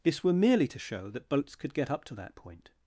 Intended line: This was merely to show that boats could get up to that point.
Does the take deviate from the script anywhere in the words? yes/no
yes